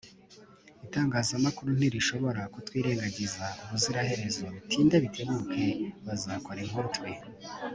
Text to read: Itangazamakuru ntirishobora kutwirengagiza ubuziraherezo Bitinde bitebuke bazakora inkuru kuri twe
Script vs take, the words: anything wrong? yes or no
yes